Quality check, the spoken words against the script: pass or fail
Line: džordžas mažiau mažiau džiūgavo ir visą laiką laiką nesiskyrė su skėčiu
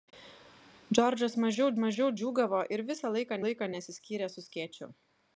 pass